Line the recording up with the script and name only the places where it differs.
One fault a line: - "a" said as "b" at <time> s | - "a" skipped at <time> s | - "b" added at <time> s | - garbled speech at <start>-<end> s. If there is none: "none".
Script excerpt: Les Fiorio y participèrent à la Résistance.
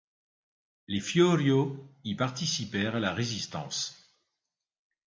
none